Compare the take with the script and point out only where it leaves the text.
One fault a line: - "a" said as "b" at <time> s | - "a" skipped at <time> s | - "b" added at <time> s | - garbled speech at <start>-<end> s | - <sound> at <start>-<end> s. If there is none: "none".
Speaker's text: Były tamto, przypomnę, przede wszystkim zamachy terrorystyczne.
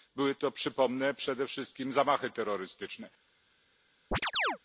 - "tamto" said as "to" at 0.3 s
- chirp at 4.1-4.6 s